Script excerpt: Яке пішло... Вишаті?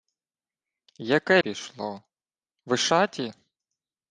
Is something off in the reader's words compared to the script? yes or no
no